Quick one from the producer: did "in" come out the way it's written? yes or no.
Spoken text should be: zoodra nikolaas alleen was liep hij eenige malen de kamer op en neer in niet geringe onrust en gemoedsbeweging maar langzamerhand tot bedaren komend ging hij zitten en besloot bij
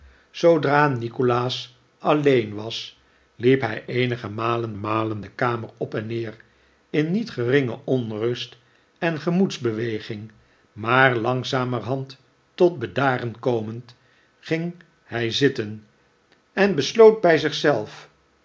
yes